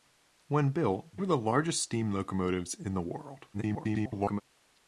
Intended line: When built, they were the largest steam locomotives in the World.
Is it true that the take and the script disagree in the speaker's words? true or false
true